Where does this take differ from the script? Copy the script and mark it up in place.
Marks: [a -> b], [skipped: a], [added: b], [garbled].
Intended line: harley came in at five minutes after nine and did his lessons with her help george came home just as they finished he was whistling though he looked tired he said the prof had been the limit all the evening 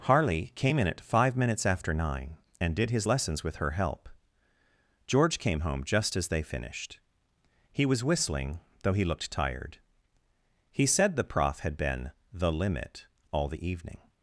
harley came in at five minutes after nine and did his lessons with her help george came home just as they finished he was whistling though he looked tired he said the prof had been the limit all the evening